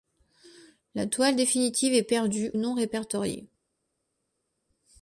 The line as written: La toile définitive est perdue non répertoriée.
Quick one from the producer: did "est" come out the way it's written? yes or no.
yes